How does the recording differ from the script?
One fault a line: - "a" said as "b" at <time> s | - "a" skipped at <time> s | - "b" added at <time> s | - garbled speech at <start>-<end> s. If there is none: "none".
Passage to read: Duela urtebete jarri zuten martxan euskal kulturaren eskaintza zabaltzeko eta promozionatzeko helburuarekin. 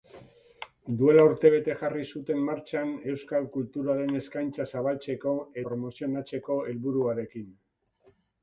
- "eta" skipped at 5.4 s